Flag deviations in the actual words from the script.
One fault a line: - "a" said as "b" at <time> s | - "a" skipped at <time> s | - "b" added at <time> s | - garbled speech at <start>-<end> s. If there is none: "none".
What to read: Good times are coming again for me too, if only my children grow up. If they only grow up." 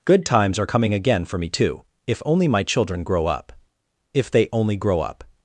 none